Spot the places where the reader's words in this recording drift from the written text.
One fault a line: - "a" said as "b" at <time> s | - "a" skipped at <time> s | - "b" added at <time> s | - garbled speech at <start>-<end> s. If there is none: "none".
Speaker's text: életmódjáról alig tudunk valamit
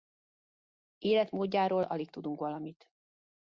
none